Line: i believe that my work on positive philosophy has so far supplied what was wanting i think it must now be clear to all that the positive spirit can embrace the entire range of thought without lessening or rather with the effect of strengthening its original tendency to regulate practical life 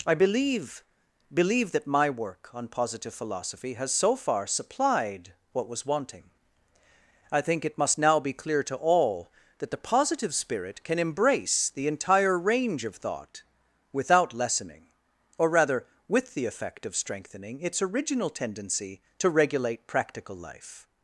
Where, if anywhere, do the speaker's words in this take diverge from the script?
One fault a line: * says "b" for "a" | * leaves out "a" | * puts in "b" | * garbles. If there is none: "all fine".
* puts in "believe"